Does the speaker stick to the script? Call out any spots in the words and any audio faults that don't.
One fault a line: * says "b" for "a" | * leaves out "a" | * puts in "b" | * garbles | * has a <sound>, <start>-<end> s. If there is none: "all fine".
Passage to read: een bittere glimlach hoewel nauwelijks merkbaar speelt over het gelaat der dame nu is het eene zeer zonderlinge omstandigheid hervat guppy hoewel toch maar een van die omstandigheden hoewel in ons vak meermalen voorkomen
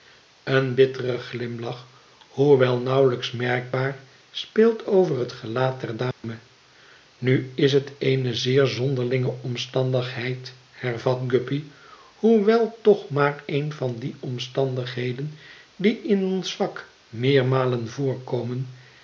* has a dropout, 6.1-6.2 s
* says "die" for "hoewel"